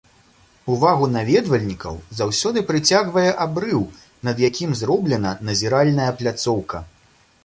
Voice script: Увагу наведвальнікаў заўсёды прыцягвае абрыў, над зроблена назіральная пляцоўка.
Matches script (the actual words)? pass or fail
fail